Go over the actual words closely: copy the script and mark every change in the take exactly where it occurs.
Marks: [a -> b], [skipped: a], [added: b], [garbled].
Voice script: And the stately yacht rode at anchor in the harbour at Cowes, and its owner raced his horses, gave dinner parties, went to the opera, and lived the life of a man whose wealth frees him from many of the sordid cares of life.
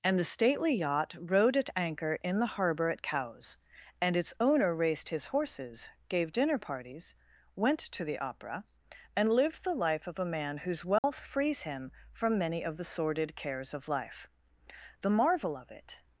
And the stately yacht rode at anchor in the harbour at Cowes, and its owner raced his horses, gave dinner parties, went to the opera, and lived the life of a man whose wealth frees him from many of the sordid cares of life. [added: The marvel of it]